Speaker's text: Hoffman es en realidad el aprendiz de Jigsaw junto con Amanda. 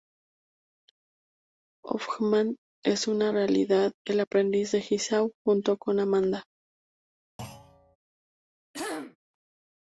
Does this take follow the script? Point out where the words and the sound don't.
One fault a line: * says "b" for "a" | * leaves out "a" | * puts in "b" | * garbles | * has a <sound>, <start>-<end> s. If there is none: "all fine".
* has a thud, 7.4-8.0 s
* has a throat clearing, 8.7-9.2 s